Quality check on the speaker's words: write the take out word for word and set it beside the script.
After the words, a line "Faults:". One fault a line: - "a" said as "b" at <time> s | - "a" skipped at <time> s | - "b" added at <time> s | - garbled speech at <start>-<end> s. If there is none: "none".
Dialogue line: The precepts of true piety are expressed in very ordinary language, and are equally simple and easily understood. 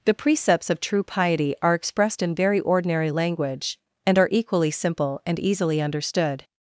The precepts of true piety are expressed in very ordinary language, and are equally simple and easily understood.
Faults:
none